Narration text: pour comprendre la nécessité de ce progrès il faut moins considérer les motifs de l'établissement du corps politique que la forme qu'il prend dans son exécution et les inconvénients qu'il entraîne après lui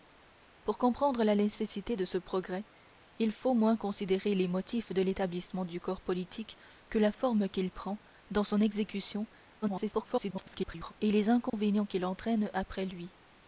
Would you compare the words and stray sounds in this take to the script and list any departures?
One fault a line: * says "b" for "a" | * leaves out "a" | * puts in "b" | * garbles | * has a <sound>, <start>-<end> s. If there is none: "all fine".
* garbles
* has a dropout, 11.5-11.5 s